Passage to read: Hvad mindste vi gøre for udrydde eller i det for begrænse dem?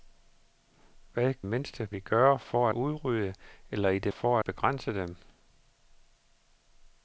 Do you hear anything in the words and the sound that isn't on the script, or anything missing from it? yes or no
no